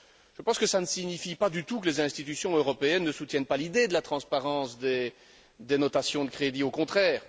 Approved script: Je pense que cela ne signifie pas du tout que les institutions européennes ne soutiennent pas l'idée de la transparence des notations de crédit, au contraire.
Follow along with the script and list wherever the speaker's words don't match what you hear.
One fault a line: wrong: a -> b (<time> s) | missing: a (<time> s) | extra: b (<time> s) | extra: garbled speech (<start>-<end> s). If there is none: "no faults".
no faults